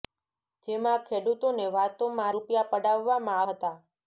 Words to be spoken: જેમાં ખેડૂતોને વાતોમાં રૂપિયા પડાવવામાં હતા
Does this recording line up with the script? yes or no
yes